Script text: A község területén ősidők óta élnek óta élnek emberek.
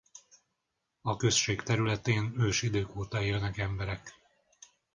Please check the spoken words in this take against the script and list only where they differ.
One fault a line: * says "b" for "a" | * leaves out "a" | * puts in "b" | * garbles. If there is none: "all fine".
* leaves out "óta élnek"